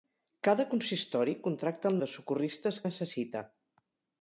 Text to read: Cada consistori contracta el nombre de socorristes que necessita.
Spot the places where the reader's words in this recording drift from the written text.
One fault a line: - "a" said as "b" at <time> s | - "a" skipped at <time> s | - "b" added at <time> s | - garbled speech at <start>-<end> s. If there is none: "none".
- "nombre" skipped at 2.0 s
- "que" skipped at 2.8 s